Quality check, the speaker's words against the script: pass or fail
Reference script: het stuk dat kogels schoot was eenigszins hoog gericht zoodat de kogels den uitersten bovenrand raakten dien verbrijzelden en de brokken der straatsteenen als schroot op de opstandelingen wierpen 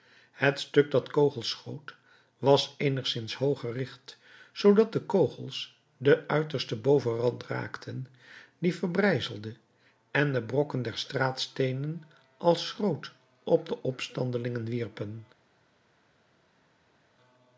pass